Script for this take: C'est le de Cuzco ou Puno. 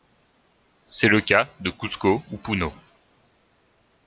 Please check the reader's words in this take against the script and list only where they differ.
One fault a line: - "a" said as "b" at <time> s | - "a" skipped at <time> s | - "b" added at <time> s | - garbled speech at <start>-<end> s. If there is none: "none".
- "cas" added at 1.2 s